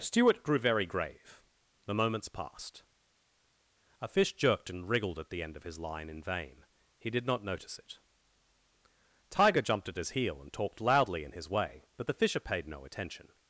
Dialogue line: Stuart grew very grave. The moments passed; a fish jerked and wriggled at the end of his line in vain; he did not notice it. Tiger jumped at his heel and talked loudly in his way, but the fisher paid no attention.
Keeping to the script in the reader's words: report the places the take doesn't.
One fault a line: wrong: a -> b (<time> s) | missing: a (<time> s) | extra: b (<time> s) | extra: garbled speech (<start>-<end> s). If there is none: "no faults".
no faults